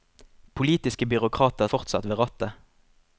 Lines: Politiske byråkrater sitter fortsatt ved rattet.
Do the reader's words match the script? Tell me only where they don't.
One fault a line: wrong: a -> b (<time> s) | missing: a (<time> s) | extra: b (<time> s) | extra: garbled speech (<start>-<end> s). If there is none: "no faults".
missing: sitter (1.7 s)